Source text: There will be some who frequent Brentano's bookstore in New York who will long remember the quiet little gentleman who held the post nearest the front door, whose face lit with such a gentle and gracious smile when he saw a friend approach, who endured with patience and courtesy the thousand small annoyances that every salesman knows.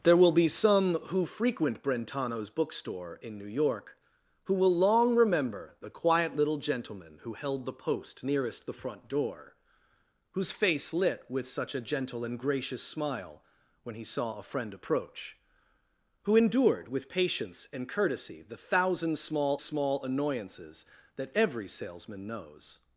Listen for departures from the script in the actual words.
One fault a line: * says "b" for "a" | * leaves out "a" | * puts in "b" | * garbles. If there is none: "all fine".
* puts in "small"